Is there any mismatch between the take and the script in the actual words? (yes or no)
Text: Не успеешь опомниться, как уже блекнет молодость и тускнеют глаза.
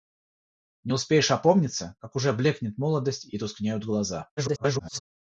yes